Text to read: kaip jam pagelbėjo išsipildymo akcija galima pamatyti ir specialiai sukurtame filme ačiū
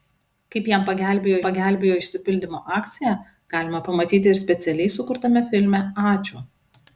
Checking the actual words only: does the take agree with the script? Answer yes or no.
no